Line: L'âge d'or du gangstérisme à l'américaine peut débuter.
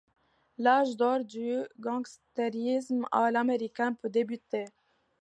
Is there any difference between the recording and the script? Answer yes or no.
no